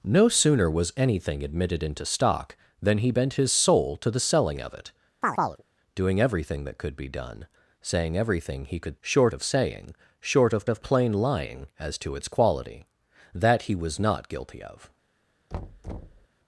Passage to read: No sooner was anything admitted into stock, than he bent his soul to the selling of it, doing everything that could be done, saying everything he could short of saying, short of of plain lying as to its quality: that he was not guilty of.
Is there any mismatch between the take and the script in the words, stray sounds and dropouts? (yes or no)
yes